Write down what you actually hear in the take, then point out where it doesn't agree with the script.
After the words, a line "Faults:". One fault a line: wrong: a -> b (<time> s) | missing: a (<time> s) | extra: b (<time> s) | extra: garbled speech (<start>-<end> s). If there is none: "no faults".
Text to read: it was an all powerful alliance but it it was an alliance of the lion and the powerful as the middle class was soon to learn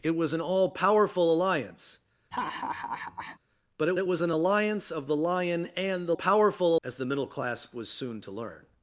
it was an all powerful alliance but it it was an alliance of the lion and the powerful as the middle class was soon to learn
Faults:
no faults